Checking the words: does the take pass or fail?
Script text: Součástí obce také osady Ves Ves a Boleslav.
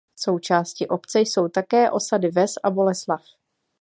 fail